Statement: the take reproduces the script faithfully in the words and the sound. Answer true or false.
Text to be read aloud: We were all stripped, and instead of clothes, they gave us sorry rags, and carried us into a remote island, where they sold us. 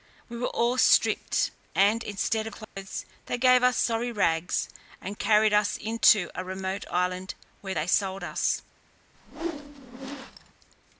false